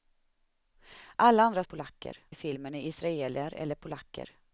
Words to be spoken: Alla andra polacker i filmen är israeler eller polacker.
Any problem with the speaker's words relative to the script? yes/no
no